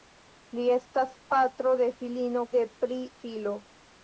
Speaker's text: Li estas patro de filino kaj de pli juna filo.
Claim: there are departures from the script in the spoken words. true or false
true